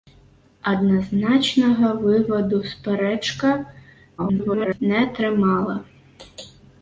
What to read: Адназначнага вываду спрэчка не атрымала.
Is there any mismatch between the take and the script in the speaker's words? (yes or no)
yes